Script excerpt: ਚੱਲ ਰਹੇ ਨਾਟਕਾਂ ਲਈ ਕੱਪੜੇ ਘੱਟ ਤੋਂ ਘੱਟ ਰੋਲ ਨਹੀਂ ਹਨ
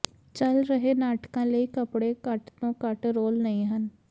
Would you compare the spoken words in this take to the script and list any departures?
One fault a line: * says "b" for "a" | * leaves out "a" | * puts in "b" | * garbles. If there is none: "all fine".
all fine